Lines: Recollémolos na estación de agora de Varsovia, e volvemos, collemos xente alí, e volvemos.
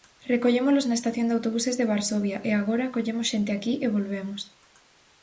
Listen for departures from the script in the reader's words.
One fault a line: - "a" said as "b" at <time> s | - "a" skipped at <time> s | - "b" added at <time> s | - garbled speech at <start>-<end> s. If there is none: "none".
- "agora" said as "autobuses" at 1.4 s
- "volvemos" said as "agora" at 2.5 s
- "alí" said as "aquí" at 3.5 s